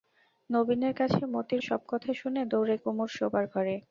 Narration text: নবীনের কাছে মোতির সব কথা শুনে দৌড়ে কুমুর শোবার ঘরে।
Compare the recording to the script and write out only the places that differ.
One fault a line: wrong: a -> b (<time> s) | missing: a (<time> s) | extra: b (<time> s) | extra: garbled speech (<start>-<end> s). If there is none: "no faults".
no faults